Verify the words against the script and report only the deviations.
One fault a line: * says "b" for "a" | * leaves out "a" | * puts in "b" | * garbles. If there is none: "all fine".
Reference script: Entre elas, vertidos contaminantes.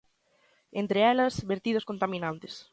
all fine